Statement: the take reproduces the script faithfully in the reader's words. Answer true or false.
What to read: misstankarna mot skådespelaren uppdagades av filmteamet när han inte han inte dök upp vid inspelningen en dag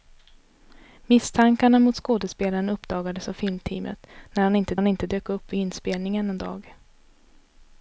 true